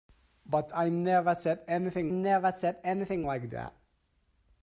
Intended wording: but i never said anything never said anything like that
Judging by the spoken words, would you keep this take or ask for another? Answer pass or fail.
pass